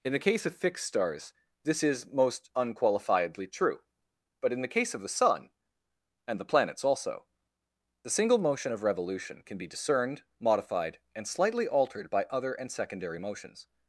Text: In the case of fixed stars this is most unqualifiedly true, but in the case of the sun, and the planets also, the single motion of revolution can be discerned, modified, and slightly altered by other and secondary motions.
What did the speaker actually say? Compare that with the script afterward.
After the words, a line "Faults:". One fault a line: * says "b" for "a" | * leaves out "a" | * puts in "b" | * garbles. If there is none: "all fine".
In the case of fixed stars this is most unqualifiedly true, but in the case of the sun, and the planets also, the single motion of revolution can be discerned, modified, and slightly altered by other and secondary motions.
Faults:
all fine